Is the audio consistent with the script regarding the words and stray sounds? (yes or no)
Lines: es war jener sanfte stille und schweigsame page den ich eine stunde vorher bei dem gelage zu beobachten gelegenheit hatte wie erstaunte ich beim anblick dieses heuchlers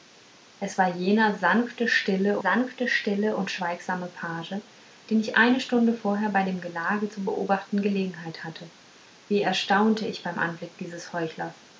no